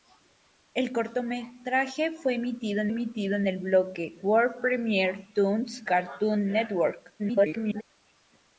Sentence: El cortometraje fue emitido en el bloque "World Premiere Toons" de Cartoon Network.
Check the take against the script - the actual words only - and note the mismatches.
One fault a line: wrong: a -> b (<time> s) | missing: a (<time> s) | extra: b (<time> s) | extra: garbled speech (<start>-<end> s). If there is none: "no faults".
extra: emitido en (2.9 s)
missing: de (5.8 s)
extra: garbled speech (7.2-7.8 s)